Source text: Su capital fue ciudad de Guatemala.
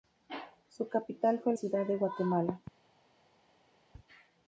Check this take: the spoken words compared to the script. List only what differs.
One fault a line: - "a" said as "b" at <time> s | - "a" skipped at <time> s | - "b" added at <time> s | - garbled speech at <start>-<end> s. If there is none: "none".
none